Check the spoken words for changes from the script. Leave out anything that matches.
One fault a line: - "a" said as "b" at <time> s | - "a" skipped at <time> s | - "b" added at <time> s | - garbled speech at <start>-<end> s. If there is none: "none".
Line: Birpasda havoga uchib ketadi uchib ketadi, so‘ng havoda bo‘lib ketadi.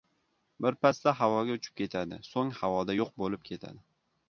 - "uchib ketadi" skipped at 2.2 s
- "yo‘q" added at 3.0 s